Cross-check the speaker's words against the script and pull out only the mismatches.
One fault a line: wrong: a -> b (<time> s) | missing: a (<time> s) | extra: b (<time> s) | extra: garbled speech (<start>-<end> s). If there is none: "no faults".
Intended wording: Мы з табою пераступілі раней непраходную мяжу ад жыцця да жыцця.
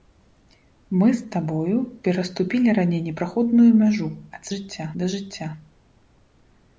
no faults